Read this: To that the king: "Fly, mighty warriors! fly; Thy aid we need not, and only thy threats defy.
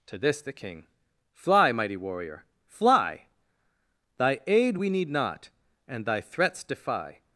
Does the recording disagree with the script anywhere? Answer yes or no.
yes